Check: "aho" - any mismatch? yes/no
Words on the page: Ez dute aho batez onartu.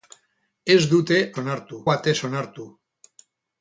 yes